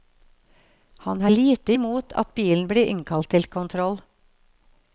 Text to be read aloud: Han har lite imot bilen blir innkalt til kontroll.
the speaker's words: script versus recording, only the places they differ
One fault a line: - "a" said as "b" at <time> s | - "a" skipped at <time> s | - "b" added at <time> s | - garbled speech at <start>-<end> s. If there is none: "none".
- "at" added at 2.2 s